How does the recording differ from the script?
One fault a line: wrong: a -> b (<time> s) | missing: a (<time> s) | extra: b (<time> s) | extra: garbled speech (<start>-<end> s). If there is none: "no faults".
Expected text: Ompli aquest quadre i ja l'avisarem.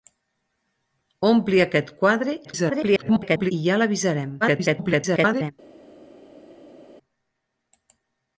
extra: garbled speech (2.4-3.5 s)
extra: garbled speech (4.4-5.5 s)